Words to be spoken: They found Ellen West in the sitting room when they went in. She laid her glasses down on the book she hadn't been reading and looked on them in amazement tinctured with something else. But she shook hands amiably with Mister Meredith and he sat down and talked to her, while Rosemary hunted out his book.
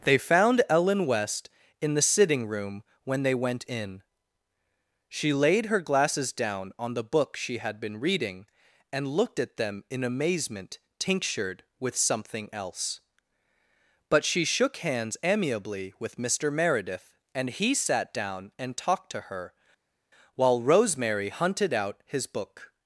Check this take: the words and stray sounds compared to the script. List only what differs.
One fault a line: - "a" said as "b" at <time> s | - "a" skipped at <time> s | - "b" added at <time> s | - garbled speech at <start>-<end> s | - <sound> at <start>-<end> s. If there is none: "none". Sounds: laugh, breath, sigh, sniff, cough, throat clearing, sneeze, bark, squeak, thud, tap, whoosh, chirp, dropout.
- "hadn't" said as "had" at 7.6 s
- "on" said as "at" at 9.4 s